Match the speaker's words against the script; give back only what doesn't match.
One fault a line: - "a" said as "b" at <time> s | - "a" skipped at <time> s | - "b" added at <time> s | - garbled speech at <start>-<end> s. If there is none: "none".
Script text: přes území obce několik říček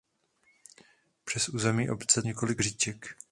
none